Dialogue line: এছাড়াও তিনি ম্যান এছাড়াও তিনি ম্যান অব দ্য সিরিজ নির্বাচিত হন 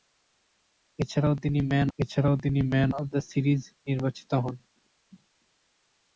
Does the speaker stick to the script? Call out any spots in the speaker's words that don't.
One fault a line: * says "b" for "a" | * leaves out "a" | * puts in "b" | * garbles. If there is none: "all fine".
all fine